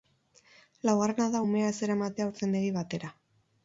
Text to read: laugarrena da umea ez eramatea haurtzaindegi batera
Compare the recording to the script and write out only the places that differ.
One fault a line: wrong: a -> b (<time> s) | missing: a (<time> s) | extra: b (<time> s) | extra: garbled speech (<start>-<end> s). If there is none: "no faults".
no faults